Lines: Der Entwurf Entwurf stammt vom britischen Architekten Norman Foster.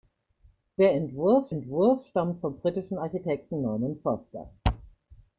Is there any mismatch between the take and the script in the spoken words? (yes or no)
no